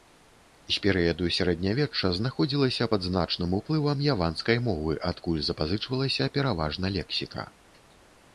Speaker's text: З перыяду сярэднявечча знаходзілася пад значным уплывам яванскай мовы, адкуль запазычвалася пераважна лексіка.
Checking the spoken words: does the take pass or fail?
pass